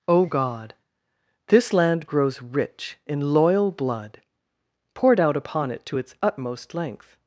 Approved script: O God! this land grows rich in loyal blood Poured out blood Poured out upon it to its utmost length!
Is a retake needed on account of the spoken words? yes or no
yes